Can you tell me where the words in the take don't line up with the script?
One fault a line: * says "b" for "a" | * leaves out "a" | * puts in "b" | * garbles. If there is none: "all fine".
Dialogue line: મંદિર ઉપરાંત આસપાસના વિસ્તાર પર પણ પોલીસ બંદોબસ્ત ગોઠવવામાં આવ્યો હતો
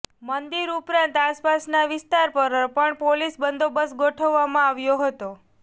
all fine